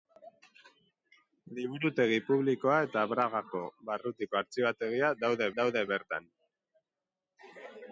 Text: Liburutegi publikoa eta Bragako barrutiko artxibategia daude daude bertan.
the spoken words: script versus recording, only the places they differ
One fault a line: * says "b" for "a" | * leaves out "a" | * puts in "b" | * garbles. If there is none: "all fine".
all fine